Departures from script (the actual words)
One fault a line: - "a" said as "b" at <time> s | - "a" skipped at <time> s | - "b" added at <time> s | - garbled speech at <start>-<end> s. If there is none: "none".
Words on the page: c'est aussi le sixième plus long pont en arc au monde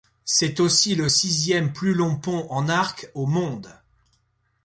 none